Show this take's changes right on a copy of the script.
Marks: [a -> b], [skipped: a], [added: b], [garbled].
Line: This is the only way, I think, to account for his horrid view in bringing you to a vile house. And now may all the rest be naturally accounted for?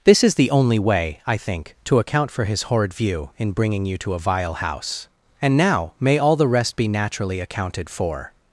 This is the only way, I think, to account for his horrid view in bringing you to a vile house. And now may all the rest be naturally accounted for?